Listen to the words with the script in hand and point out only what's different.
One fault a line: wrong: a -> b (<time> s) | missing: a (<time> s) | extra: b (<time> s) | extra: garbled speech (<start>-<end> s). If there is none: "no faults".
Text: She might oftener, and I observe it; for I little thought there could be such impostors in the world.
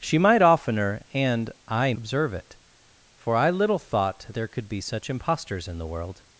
no faults